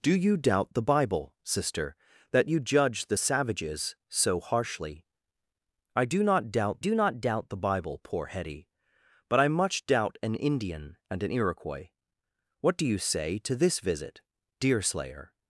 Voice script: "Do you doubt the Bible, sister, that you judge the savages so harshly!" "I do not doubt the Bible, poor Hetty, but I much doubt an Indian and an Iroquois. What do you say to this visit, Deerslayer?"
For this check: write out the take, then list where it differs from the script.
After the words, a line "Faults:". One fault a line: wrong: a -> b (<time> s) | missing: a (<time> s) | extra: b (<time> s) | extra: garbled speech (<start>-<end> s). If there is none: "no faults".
"Do you doubt the Bible, sister, that you judge the savages so harshly!" "I do not doubt do not doubt the Bible, poor Hetty, but I much doubt an Indian and an Iroquois. What do you say to this visit, Deerslayer?"
Faults:
extra: do not doubt (6.8 s)